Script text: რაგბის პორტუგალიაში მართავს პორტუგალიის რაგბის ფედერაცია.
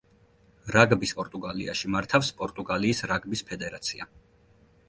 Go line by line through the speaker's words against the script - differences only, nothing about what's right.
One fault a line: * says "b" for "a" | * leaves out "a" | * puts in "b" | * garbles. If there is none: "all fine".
all fine